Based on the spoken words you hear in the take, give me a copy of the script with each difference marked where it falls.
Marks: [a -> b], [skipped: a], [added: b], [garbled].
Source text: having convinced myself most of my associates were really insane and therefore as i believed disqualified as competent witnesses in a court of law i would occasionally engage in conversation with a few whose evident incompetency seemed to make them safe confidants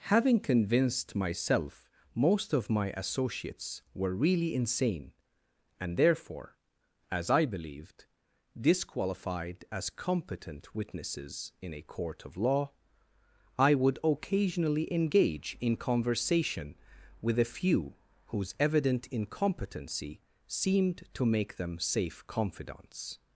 having convinced myself most of my associates were really insane and therefore as i believed disqualified as competent witnesses in a court of law i would occasionally engage in conversation with a few whose evident incompetency seemed to make them safe confidants